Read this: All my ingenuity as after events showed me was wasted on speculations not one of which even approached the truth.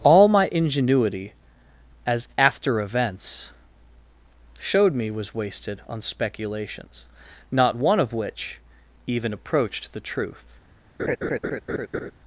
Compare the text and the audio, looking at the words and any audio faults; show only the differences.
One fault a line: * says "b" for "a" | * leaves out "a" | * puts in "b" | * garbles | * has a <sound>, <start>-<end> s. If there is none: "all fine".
* has a laugh, 11.0-12.1 s